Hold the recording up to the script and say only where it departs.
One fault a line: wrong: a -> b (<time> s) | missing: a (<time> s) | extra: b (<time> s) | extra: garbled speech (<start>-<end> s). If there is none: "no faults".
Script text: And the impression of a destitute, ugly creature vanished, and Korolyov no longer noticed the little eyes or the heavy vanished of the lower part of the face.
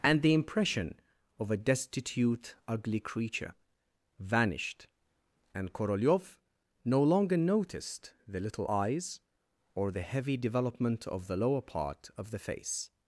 wrong: vanished -> development (10.4 s)